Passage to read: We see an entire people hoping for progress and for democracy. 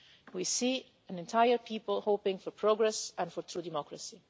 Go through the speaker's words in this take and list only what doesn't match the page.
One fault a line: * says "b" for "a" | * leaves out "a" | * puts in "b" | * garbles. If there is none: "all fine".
* puts in "true"